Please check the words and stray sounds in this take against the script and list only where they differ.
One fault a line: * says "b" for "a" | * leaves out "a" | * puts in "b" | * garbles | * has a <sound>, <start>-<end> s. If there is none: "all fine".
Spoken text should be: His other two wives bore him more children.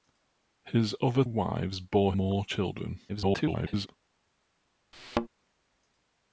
* leaves out "two"
* leaves out "him"
* garbles
* has a thud, 4.9-5.3 s